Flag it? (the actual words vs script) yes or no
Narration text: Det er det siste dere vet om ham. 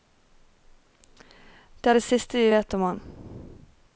yes